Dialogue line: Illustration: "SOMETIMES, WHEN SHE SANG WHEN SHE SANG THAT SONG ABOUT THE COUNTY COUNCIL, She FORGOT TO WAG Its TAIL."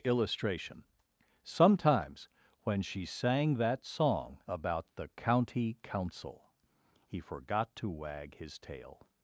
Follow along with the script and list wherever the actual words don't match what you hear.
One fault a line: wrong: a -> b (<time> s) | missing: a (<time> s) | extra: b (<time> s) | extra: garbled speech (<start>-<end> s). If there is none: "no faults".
missing: WHEN SHE SANG (3.5 s)
wrong: She -> HE (7.1 s)
wrong: Its -> HIS (8.4 s)